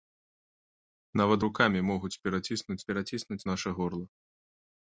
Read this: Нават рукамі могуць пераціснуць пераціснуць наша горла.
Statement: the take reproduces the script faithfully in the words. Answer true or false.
true